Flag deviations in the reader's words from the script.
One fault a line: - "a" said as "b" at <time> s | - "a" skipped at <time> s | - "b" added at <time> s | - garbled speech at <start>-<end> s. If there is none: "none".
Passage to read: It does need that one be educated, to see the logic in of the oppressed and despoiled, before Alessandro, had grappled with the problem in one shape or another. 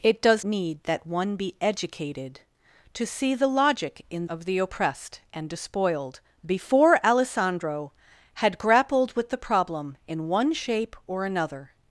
none